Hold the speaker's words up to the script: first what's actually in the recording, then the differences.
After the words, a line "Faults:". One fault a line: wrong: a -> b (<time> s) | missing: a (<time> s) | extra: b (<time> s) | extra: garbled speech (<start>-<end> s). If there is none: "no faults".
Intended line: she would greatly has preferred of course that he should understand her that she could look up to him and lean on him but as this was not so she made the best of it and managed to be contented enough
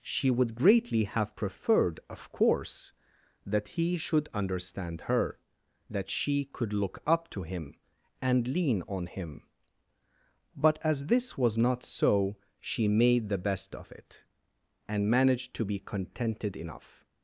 she would greatly have preferred of course that he should understand her that she could look up to him and lean on him but as this was not so she made the best of it and managed to be contented enough
Faults:
wrong: has -> have (1.0 s)